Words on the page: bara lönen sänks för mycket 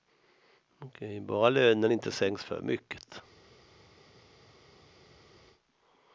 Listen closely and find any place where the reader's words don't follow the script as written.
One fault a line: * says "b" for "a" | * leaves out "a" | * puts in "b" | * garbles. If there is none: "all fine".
* puts in "inte"